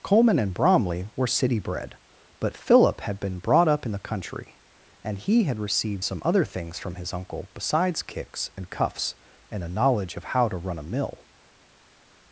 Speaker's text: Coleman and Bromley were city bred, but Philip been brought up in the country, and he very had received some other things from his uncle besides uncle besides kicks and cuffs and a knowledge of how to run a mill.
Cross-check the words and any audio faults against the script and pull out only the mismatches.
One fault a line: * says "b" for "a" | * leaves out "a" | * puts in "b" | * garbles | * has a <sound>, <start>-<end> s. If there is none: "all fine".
* puts in "had"
* leaves out "very"
* leaves out "uncle besides"